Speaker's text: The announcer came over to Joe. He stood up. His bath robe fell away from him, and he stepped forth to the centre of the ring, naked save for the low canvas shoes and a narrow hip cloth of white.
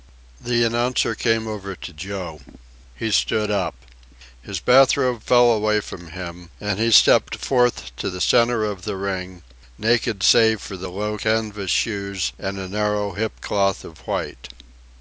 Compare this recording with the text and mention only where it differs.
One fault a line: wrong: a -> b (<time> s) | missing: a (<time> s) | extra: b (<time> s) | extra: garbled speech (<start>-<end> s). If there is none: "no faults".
no faults